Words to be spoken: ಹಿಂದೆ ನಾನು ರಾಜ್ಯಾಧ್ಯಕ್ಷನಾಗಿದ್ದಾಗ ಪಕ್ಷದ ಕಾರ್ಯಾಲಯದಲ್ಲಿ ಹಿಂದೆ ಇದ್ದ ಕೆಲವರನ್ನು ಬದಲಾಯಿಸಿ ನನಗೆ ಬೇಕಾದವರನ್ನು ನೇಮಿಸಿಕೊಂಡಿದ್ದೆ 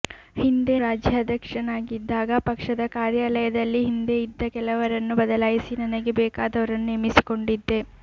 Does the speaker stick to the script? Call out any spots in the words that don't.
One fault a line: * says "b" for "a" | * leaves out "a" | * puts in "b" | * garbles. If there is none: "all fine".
* leaves out "ನಾನು"